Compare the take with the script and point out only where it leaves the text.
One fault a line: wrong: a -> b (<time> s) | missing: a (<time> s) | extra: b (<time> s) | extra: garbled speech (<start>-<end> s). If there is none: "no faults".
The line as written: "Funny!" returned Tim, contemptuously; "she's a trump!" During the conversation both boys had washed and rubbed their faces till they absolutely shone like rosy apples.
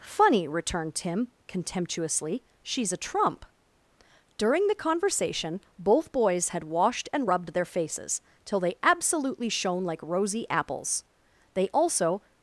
extra: They also (11.5 s)